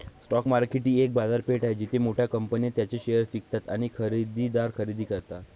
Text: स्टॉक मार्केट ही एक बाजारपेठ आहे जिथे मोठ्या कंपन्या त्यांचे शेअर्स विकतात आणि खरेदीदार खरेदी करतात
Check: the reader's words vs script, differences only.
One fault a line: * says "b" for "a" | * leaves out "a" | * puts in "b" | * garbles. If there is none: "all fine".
all fine